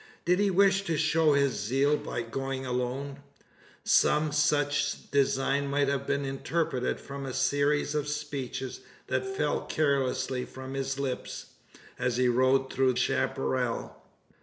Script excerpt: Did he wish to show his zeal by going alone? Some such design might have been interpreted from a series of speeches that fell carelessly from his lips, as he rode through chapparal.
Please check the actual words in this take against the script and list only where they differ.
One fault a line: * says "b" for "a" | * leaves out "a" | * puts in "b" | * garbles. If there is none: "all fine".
all fine